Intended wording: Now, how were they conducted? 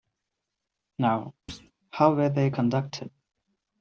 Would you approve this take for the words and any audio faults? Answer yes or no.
no